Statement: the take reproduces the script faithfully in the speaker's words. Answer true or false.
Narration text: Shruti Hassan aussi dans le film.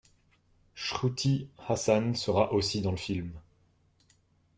false